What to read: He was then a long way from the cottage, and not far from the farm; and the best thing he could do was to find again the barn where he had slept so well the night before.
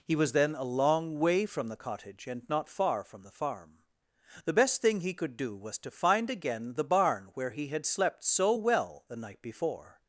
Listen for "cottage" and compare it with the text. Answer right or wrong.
right